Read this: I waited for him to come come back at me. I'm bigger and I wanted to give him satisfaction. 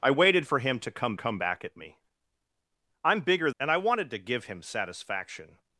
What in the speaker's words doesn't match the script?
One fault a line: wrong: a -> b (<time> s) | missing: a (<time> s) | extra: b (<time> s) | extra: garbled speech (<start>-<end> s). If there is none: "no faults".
no faults